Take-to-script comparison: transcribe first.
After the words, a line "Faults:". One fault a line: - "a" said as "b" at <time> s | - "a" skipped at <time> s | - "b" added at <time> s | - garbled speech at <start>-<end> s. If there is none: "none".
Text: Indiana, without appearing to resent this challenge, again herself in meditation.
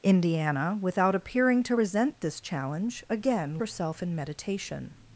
Indiana, without appearing to resent this challenge, again herself in meditation.
Faults:
none